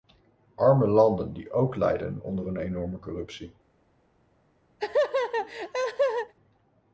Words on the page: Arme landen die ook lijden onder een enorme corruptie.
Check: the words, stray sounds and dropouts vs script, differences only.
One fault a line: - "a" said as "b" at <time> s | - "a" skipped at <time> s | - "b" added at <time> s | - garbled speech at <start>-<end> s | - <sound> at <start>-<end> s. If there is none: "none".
- laugh at 4.8-6.3 s